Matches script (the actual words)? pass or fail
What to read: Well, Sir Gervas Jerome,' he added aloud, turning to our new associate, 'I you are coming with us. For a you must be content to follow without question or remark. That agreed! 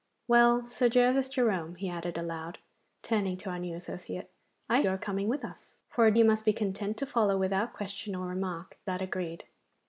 pass